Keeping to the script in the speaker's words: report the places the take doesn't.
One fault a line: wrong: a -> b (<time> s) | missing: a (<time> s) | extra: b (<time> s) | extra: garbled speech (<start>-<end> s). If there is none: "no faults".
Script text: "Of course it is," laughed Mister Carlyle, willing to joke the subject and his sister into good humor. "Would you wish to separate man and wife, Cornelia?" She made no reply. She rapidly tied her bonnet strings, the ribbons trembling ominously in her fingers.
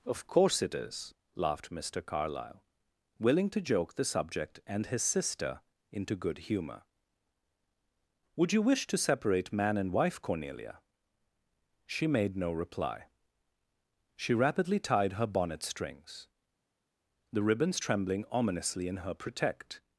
wrong: fingers -> protect (19.1 s)